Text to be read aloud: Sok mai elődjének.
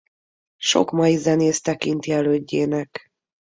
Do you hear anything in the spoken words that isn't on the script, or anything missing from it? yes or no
yes